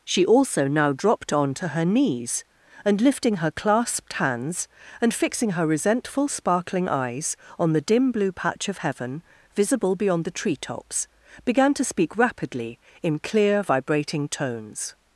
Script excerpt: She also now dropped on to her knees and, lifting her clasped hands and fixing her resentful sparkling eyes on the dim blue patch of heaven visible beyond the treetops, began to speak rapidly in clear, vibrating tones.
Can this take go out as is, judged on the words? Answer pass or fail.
pass